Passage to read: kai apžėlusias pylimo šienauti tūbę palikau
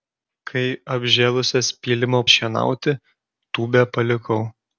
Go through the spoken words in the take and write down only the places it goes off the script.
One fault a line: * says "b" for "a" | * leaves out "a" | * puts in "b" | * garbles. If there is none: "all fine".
all fine